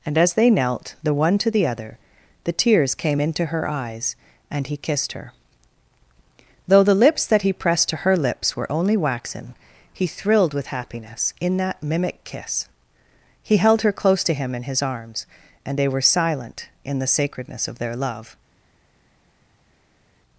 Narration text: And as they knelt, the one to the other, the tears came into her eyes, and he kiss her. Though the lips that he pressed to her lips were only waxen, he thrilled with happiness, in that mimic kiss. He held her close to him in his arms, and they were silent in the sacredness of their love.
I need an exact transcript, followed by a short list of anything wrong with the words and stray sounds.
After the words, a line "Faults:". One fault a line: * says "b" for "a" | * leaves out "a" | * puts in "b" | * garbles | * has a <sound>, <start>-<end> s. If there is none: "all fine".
And as they knelt, the one to the other, the tears came into her eyes, and he kissed her. Though the lips that he pressed to her lips were only waxen, he thrilled with happiness, in that mimic kiss. He held her close to him in his arms, and they were silent in the sacredness of their love.
Faults:
* says "kissed" for "kiss"